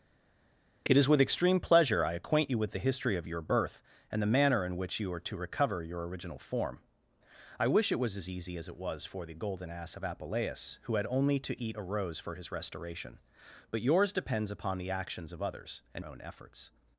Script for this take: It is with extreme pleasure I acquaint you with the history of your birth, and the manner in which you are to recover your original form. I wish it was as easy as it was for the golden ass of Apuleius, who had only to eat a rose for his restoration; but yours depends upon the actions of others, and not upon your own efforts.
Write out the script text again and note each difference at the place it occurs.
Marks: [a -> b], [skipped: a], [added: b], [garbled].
It is with extreme pleasure I acquaint you with the history of your birth, and the manner in which you are to recover your original form. I wish it was as easy as it was for the golden ass of Apuleius, who had only to eat a rose for his restoration; but yours depends upon the actions of others, and [skipped: not upon your] own efforts.